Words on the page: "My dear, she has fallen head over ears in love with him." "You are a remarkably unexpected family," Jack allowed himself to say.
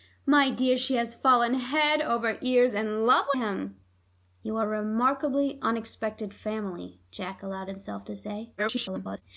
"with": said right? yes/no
no